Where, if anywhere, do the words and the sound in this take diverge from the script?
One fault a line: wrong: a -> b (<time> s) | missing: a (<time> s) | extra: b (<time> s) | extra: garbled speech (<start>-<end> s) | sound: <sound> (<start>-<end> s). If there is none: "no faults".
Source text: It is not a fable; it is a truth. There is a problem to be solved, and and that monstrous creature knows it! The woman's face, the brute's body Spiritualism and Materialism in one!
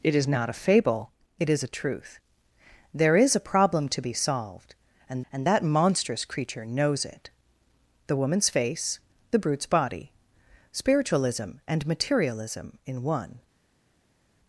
no faults